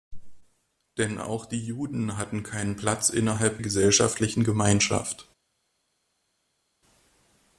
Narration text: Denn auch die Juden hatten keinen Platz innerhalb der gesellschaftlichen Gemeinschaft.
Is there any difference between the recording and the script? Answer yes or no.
yes